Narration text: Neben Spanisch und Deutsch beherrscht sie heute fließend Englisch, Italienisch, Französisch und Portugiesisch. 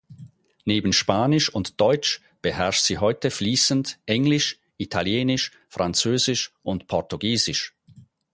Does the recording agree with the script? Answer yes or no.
yes